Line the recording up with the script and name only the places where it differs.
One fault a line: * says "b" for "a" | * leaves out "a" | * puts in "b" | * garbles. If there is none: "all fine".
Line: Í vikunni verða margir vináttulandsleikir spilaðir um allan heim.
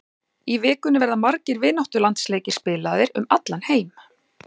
all fine